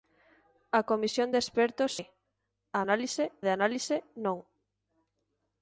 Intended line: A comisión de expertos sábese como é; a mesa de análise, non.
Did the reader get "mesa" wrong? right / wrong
wrong